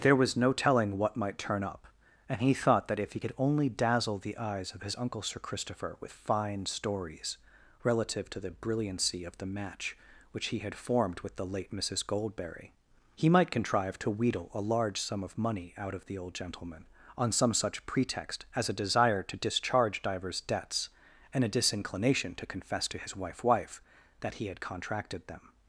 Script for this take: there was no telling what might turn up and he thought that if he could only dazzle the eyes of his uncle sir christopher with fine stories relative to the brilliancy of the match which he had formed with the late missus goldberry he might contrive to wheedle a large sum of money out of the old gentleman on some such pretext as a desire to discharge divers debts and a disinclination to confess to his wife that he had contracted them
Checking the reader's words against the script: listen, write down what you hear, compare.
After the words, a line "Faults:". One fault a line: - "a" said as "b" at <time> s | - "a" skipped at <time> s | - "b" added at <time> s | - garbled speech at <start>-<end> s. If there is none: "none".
there was no telling what might turn up and he thought that if he could only dazzle the eyes of his uncle sir christopher with fine stories relative to the brilliancy of the match which he had formed with the late missus goldberry he might contrive to wheedle a large sum of money out of the old gentleman on some such pretext as a desire to discharge divers debts and a disinclination to confess to his wife wife that he had contracted them
Faults:
- "wife" added at 23.4 s